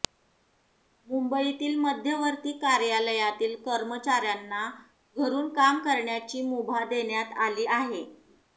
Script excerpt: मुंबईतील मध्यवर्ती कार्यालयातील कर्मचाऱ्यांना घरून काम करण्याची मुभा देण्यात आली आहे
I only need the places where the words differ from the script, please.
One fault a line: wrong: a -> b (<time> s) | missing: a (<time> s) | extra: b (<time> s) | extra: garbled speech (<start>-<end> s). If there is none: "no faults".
no faults